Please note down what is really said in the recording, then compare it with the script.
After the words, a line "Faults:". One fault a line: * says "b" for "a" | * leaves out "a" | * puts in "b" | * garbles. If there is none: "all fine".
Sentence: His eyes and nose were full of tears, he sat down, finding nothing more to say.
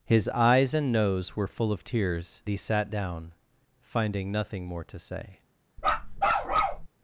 His eyes and nose were full of tears, he sat down, finding nothing more to say.
Faults:
all fine